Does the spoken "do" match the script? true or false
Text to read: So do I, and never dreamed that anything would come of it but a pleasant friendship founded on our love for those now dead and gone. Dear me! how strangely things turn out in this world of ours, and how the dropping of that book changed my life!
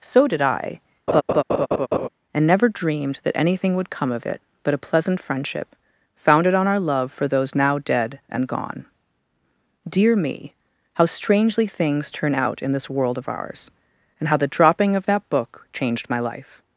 false